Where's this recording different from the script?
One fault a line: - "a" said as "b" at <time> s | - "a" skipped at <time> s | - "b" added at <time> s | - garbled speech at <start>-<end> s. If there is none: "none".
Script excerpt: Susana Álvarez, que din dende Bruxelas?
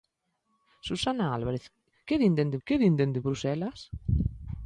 - "que din dende" added at 2.7 s